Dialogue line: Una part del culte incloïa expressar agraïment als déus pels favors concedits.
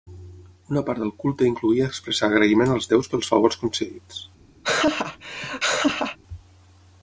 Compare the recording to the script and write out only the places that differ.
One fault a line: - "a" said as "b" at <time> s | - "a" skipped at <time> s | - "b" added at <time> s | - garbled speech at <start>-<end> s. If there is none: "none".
none